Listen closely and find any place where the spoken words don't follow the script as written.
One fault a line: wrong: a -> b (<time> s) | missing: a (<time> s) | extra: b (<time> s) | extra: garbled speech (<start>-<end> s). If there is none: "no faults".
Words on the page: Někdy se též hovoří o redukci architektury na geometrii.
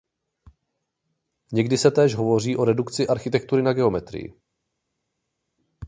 no faults